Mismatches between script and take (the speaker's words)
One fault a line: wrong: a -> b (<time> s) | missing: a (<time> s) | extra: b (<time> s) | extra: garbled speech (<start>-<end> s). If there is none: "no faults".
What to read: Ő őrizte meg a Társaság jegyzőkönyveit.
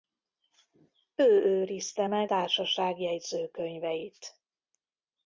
missing: a (2.3 s)